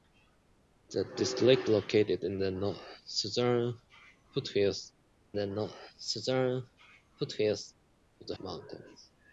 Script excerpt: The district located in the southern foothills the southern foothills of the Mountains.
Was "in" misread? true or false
false